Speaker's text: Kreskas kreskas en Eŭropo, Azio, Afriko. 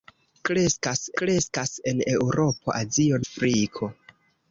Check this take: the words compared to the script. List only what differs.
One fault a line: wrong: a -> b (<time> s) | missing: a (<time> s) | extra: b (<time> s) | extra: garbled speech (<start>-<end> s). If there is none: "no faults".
no faults